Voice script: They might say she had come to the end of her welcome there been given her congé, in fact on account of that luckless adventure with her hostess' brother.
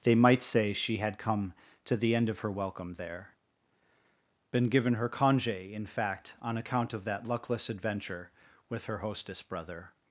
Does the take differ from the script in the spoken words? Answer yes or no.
no